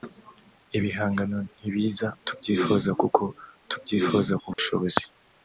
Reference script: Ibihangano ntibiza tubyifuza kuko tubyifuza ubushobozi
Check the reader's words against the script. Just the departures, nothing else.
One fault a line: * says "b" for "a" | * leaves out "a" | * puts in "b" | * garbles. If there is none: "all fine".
all fine